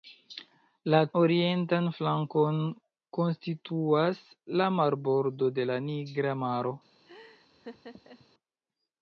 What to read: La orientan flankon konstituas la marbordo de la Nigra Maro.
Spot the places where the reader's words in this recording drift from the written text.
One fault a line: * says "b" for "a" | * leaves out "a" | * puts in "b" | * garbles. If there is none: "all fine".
all fine